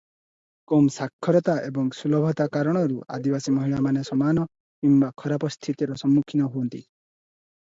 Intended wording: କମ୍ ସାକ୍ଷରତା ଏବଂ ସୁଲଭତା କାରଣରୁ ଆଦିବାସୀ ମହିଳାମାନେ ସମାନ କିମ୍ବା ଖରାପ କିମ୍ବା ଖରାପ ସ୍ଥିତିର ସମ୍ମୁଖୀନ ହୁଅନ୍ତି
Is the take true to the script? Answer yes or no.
no